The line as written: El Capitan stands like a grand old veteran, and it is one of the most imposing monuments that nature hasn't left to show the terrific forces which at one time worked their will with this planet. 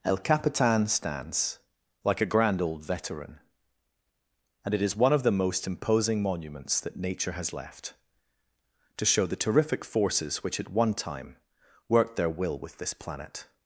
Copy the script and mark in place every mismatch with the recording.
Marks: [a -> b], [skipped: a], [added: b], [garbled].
El Capitan stands like a grand old veteran, and it is one of the most imposing monuments that nature [hasn't -> has] left to show the terrific forces which at one time worked their will with this planet.